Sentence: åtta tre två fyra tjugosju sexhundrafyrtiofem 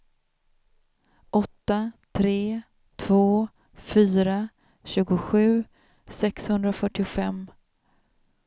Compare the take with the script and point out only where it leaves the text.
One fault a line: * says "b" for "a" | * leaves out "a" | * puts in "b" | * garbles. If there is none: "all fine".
all fine